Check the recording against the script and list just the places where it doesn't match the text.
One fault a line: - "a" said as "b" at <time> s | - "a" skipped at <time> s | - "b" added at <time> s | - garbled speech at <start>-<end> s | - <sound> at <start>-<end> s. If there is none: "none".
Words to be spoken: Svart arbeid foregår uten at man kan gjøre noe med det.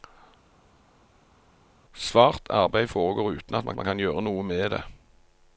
- "man" added at 3.8 s